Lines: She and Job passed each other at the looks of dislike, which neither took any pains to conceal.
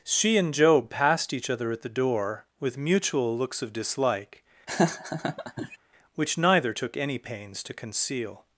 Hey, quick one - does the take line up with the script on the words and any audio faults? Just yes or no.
no